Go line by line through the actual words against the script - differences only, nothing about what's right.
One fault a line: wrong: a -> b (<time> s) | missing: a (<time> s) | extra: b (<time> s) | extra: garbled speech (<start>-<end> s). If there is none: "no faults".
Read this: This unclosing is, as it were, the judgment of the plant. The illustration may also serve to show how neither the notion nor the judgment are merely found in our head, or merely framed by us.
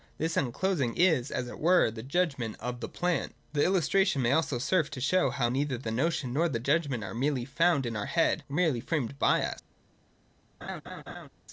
no faults